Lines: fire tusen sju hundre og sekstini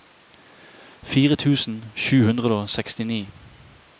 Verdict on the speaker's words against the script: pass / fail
pass